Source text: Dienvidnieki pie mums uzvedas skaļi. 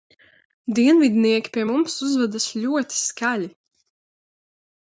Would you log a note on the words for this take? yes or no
yes